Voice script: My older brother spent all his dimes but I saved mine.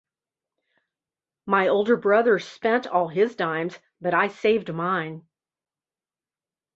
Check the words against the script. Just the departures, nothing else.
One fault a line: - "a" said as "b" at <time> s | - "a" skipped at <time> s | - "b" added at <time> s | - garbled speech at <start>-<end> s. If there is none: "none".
none